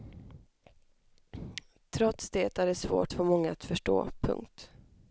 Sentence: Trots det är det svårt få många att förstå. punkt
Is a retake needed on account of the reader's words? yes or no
no